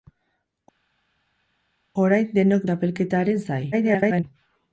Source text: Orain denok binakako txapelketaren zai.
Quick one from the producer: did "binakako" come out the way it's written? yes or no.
no